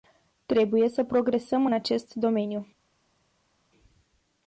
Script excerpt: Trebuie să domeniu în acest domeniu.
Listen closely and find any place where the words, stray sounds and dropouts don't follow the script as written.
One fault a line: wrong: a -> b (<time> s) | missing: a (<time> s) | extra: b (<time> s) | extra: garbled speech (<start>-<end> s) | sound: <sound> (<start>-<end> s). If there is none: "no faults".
wrong: domeniu -> progresăm (1.0 s)